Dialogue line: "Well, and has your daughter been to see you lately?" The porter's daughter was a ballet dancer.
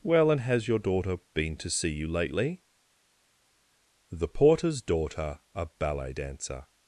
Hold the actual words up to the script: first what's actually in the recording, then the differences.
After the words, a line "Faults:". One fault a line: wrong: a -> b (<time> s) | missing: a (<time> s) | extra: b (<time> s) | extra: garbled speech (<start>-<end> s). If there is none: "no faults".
"Well, and has your daughter been to see you lately?" The porter's daughter a ballet dancer.
Faults:
missing: was (5.4 s)